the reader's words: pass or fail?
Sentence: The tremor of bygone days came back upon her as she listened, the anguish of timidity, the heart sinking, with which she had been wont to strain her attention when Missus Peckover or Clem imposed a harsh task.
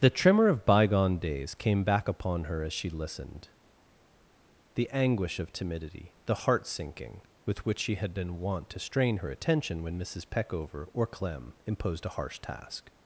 pass